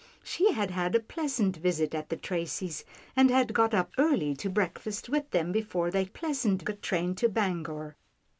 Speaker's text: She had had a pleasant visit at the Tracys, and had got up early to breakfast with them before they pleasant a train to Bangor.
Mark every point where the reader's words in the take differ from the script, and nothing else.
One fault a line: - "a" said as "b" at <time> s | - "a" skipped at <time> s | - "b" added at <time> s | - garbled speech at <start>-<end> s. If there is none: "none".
none